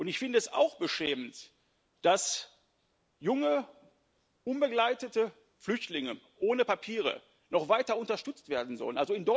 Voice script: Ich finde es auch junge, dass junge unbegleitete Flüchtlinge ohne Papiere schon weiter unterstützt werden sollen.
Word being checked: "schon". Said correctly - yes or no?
no